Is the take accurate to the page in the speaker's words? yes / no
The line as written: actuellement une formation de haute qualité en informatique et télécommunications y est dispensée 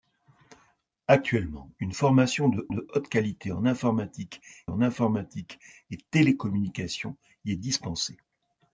no